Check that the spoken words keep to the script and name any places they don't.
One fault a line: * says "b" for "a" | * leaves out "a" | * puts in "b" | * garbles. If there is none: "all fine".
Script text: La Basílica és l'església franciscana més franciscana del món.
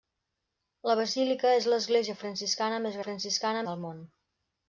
all fine